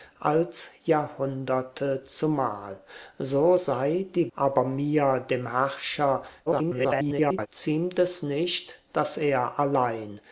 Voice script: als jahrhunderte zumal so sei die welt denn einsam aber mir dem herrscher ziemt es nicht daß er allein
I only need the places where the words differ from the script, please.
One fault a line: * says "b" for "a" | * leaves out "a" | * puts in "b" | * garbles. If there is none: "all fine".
* leaves out "welt denn einsam"
* garbles